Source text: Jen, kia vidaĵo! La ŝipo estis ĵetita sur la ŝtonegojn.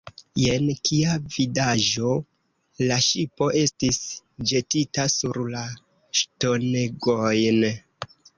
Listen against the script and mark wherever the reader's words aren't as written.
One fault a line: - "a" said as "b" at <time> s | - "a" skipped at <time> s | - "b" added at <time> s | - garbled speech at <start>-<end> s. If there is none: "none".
none